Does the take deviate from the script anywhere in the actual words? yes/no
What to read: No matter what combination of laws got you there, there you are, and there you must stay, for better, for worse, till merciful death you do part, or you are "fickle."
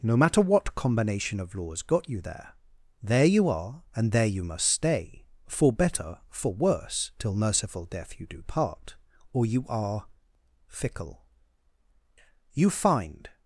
yes